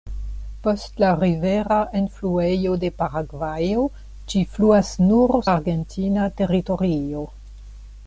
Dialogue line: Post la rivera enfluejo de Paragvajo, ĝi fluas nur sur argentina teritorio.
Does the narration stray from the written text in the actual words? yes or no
yes